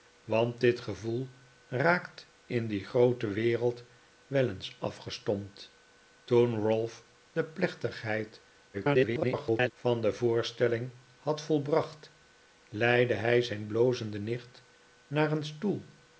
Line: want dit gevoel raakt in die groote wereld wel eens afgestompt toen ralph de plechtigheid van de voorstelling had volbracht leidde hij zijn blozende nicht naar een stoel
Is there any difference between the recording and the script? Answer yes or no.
yes